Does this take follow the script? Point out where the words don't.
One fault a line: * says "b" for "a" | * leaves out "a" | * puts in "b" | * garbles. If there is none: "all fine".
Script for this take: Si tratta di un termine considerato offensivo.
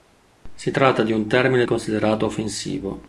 all fine